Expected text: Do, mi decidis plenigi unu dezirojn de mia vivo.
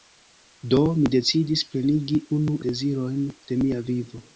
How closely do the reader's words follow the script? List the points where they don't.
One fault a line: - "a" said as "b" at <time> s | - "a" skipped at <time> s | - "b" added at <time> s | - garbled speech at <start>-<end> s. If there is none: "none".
none